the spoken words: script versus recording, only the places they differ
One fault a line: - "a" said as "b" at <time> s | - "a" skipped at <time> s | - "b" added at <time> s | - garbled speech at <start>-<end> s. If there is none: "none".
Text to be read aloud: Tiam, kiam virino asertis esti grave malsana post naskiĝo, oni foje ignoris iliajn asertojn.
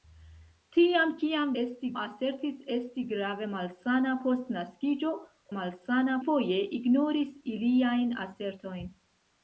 - "virino" said as "esti" at 1.6 s
- "oni" said as "malsana" at 5.6 s